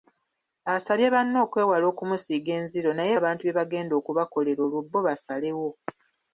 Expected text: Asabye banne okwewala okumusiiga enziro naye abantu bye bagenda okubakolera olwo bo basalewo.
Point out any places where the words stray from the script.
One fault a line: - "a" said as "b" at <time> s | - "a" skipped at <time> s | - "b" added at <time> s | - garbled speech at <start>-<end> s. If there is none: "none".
none